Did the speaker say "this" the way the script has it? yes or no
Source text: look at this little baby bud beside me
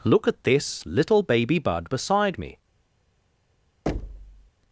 yes